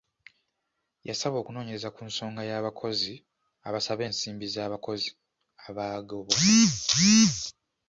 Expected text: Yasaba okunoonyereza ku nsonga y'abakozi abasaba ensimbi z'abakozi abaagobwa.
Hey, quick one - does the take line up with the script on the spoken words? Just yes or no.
yes